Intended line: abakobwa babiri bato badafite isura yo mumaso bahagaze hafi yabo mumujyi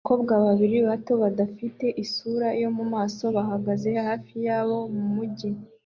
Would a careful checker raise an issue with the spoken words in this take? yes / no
no